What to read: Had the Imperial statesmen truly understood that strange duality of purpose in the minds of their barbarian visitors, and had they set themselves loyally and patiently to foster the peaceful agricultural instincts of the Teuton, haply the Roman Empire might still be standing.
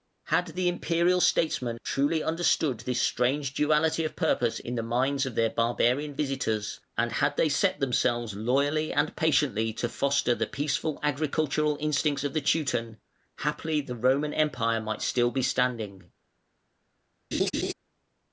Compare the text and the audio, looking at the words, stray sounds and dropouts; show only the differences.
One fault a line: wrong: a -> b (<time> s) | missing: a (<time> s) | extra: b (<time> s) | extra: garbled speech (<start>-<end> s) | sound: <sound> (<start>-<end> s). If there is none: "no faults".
wrong: that -> this (2.8 s)
sound: laugh (17.3-17.7 s)